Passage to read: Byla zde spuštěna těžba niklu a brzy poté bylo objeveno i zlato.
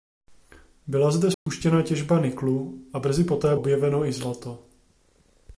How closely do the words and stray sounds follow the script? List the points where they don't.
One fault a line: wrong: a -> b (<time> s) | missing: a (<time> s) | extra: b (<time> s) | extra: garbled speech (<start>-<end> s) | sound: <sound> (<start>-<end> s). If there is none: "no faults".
sound: dropout (1.3-1.5 s)
missing: bylo (3.5 s)